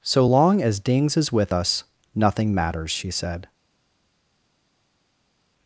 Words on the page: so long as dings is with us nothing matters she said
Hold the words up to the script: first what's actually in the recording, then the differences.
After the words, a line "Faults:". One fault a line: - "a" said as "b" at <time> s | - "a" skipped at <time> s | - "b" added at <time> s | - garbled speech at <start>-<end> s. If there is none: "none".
so long as dings is with us nothing matters she said
Faults:
none